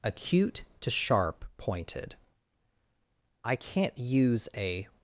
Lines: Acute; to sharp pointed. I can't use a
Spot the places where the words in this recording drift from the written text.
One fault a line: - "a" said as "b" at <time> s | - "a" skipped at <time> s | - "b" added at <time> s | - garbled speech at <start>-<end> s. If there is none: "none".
none